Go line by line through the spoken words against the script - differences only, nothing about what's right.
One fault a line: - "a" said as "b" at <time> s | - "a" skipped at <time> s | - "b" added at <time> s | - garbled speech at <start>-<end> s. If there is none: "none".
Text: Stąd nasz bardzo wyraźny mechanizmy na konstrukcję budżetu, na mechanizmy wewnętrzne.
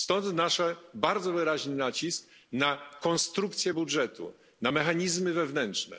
- "mechanizmy" said as "nacisk" at 1.8 s